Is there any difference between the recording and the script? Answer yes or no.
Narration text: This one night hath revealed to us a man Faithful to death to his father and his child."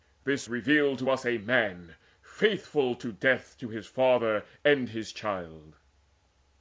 yes